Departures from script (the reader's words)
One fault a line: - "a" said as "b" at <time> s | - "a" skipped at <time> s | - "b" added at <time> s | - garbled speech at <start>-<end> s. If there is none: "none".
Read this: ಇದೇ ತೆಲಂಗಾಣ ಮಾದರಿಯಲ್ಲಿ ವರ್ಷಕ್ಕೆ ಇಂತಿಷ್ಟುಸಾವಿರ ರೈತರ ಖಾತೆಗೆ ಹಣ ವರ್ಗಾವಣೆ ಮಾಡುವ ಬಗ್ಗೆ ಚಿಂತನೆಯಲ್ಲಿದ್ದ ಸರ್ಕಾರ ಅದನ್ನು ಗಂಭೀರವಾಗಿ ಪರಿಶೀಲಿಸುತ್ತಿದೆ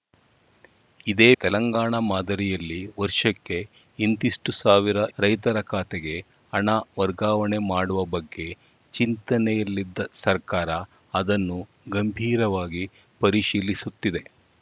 none